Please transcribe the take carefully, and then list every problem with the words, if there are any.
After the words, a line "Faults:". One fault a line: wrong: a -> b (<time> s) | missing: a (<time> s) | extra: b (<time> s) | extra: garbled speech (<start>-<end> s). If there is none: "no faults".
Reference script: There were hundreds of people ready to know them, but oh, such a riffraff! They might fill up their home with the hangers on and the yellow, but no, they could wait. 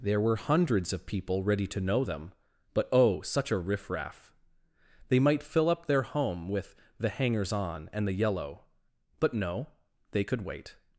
There were hundreds of people ready to know them, but oh, such a riffraff! They might fill up their home with the hangers on and the yellow, but no, they could wait.
Faults:
no faults